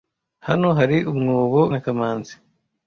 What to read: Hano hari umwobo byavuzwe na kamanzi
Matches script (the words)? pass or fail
fail